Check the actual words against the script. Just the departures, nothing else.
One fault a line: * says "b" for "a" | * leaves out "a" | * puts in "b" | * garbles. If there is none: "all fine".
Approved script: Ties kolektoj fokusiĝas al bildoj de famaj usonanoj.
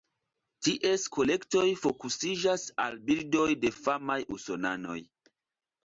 all fine